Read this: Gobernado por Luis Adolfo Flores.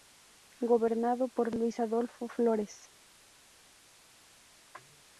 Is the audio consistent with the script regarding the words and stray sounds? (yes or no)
yes